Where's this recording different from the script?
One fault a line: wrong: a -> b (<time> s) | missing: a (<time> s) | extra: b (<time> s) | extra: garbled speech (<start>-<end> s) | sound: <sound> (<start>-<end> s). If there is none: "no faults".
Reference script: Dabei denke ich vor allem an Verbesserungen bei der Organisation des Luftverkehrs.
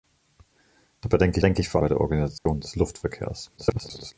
extra: denke (1.4 s)
missing: allem an Verbesserungen (1.8 s)
sound: dropout (2.4-2.5 s)
extra: garbled speech (3.6-4.1 s)